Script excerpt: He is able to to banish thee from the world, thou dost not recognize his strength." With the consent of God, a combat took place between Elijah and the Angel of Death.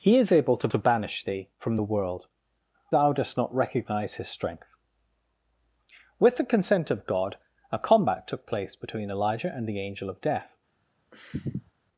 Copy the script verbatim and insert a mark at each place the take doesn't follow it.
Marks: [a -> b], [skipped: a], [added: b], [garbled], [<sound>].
He is able to to banish thee from the world, thou dost not recognize his strength." With the consent of God, a combat took place between Elijah and the Angel of Death. [sniff]